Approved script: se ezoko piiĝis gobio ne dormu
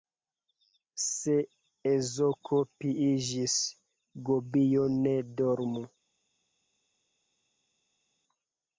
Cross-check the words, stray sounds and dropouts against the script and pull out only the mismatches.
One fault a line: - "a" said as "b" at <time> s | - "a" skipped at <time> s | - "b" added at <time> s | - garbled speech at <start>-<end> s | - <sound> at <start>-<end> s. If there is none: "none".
none